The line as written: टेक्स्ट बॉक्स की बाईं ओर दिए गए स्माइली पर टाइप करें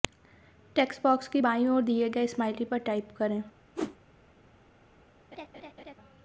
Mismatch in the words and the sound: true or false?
true